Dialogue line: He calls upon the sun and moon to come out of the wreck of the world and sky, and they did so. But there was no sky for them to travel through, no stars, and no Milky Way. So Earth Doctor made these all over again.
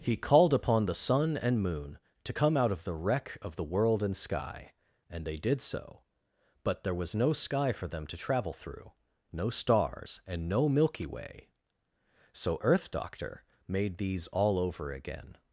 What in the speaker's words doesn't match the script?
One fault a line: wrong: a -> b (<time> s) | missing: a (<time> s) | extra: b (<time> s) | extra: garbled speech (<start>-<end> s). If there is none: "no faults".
wrong: calls -> called (0.2 s)